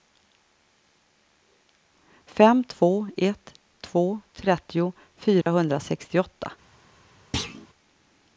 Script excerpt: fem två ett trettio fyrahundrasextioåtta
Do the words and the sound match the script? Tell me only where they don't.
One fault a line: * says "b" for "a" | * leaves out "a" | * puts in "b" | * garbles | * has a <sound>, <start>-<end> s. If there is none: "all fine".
* puts in "två"
* has a dropout, 5.4-5.5 s
* has a thud, 7.3-7.7 s